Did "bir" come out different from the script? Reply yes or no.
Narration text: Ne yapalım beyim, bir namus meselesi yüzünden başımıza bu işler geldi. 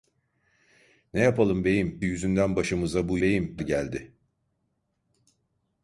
yes